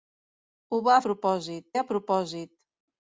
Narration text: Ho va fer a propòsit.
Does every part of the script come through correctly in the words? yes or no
no